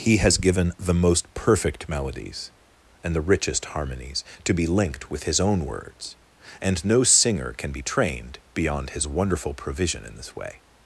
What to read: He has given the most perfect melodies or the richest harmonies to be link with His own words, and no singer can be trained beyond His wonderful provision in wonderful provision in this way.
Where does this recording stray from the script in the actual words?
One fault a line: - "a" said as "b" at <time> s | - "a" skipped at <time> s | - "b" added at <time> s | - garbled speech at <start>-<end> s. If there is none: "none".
- "or" said as "and" at 3.0 s
- "link" said as "linked" at 4.7 s
- "wonderful provision in" skipped at 10.2 s